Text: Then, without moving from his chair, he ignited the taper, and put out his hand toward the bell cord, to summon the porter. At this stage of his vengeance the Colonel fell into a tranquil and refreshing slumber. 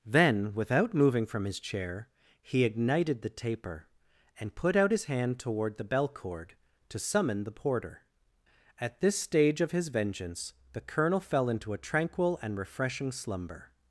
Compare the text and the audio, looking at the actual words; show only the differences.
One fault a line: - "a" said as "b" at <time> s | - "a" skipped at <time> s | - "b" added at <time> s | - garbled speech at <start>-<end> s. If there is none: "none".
none